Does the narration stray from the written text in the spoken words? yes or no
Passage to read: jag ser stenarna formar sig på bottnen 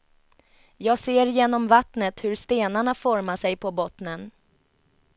yes